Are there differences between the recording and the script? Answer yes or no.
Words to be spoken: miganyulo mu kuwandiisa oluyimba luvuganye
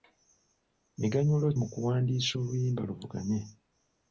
no